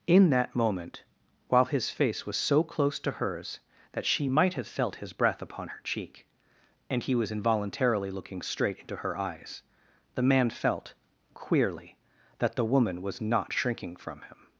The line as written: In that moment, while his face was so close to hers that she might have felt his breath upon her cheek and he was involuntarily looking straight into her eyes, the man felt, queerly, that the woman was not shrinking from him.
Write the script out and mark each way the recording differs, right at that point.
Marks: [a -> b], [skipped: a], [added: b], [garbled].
In that moment, while his face was so close to hers that she might have felt his breath upon her cheek and he was involuntarily looking straight into her eyes, the man felt, queerly, that the woman was not shrinking from him.